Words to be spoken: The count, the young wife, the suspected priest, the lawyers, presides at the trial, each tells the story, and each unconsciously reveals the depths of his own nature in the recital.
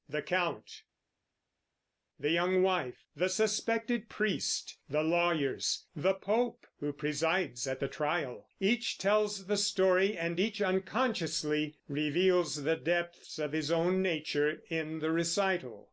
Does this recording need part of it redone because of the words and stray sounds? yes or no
yes